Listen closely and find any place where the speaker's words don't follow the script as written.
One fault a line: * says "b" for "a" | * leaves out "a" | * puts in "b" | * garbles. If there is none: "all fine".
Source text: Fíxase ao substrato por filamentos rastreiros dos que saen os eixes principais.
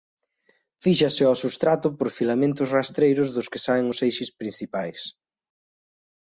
all fine